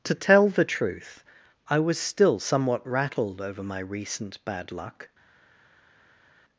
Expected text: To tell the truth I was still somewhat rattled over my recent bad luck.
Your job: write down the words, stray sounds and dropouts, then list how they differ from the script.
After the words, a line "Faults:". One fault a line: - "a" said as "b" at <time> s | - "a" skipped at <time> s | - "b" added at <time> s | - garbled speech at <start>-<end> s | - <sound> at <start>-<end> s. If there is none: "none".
To tell the truth I was still somewhat rattled over my recent bad luck.
Faults:
none